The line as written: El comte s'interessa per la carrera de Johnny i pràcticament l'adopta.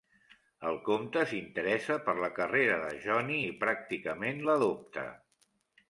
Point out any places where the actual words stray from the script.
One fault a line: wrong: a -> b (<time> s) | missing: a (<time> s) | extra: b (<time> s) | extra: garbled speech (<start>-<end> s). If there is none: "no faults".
no faults